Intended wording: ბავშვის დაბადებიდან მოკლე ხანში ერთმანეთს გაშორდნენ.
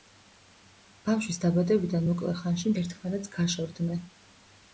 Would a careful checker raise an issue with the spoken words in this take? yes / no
no